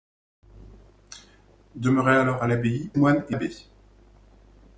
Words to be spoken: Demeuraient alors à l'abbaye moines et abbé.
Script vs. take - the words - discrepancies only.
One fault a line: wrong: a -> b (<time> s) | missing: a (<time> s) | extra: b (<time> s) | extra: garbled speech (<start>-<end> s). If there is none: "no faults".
no faults